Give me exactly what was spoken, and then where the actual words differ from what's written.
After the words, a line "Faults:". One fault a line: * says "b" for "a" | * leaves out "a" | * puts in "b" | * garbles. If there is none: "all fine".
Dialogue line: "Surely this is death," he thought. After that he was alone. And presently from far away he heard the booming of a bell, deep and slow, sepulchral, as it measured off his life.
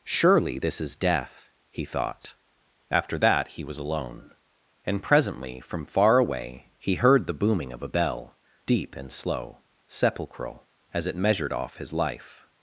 "Surely this is death," he thought. After that he was alone. And presently from far away he heard the booming of a bell, deep and slow, sepulchral, as it measured off his life.
Faults:
all fine